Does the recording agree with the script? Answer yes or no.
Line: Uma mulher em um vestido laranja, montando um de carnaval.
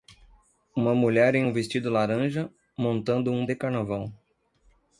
yes